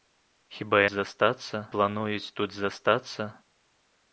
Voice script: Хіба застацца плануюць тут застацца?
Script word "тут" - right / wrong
right